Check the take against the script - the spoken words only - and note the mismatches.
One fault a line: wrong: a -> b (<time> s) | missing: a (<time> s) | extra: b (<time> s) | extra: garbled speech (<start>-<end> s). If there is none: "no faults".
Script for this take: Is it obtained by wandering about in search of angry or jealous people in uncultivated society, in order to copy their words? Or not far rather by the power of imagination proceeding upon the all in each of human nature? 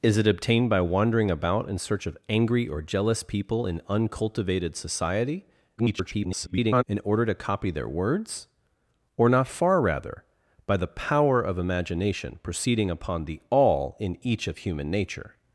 extra: garbled speech (5.8-6.8 s)